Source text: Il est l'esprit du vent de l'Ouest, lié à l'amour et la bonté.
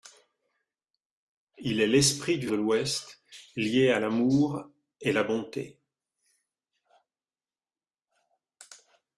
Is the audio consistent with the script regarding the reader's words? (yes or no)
no